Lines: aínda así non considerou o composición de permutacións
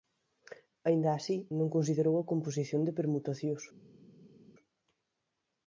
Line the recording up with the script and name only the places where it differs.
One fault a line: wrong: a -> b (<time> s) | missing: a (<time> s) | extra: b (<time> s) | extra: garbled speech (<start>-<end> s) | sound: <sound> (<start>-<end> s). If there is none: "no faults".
wrong: o -> a (2.2 s)